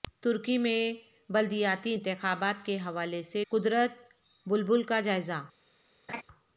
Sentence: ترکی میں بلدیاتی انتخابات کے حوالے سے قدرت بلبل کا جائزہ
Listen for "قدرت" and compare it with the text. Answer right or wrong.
right